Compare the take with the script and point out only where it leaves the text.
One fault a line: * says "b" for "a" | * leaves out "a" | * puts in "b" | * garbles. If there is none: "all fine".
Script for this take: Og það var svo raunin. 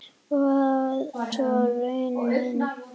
* leaves out "það var"